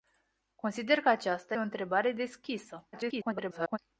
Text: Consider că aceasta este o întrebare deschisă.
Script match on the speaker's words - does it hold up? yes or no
no